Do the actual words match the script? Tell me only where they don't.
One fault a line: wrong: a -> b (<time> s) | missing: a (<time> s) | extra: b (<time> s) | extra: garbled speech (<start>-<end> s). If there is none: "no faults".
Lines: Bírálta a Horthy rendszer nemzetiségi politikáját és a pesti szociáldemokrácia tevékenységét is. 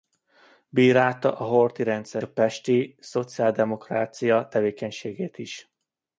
missing: nemzetiségi politikáját és (2.2 s)